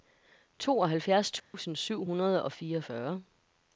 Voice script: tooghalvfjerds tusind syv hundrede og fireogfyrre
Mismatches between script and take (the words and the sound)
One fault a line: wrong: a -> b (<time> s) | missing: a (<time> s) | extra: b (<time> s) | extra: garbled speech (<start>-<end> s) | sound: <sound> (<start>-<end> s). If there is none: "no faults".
sound: dropout (1.4-1.5 s)